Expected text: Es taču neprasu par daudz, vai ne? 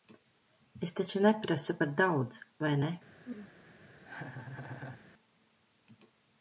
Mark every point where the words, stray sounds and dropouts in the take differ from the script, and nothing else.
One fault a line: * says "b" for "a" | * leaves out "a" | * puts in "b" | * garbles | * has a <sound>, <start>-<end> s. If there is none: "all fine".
* has a throat clearing, 3.2-3.5 s
* has a laugh, 4.0-5.0 s